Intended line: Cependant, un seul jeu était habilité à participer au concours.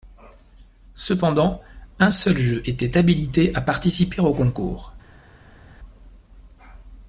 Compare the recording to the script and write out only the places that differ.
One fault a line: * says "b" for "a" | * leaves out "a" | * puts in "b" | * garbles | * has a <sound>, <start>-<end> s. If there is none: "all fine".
all fine